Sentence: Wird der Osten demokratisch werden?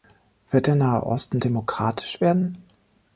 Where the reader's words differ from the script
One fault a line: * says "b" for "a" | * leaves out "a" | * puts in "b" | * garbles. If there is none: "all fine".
* puts in "Nahe"